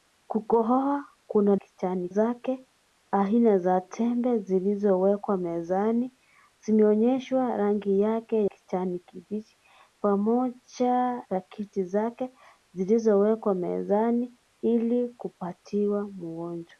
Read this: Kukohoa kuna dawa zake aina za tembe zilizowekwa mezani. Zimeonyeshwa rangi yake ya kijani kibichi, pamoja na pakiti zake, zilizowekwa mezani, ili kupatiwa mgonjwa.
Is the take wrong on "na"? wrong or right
wrong